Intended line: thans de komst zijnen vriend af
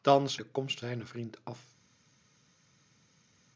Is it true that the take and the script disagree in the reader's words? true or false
false